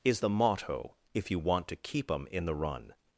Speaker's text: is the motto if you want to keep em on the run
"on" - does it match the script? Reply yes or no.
no